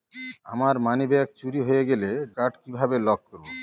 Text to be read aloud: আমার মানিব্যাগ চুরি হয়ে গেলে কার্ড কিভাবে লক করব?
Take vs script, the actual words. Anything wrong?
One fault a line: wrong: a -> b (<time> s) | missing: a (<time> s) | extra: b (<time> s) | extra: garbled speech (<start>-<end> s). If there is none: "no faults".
no faults